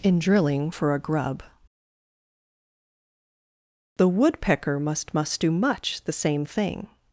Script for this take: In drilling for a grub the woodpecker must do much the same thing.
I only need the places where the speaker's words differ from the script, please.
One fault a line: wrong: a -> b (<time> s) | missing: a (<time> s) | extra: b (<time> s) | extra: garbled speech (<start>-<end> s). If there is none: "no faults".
extra: must (5.1 s)